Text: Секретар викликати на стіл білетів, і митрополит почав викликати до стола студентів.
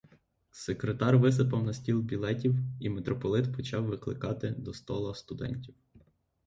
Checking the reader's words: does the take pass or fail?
fail